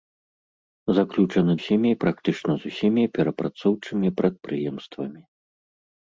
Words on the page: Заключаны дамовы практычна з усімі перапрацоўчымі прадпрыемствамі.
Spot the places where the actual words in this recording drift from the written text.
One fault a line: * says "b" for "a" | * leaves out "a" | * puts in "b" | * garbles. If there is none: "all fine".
* says "усімі" for "дамовы"